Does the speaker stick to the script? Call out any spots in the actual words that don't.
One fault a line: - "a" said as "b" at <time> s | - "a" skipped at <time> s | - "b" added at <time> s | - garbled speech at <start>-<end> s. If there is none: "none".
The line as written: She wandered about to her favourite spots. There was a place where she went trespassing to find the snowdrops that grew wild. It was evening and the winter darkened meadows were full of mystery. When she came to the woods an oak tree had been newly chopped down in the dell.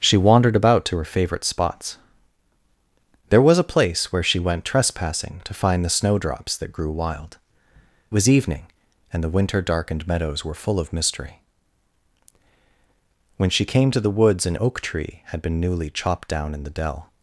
- "It" skipped at 7.4 s